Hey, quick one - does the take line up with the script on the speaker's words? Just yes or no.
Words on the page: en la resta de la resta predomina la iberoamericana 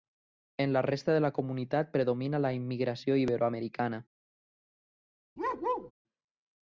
no